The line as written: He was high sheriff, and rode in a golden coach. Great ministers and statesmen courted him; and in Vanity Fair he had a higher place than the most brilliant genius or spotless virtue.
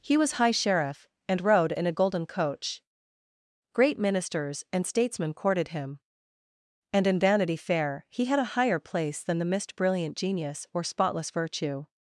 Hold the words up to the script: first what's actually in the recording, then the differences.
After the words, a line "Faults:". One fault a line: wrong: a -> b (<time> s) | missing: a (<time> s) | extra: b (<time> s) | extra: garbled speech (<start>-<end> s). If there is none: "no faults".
He was high sheriff, and rode in a golden coach. Great ministers and statesmen courted him; and in Vanity Fair he had a higher place than the mist brilliant genius or spotless virtue.
Faults:
wrong: most -> mist (9.5 s)